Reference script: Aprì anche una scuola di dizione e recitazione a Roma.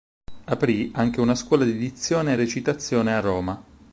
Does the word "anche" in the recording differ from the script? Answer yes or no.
no